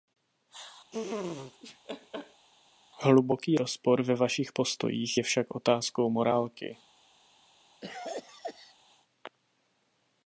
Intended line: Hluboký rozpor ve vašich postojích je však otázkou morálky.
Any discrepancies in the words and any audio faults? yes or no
yes